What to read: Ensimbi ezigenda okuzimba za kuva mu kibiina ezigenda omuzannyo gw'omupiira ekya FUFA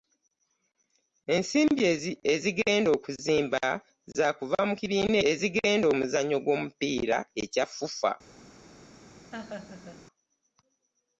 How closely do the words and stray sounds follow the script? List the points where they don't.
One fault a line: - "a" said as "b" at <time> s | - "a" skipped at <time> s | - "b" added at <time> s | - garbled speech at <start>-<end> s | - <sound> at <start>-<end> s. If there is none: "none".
- laugh at 9.3-10.1 s